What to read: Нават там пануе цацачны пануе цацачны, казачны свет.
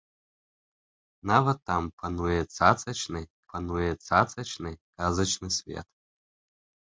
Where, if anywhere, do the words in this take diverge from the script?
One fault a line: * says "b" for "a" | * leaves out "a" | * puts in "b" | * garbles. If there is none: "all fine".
all fine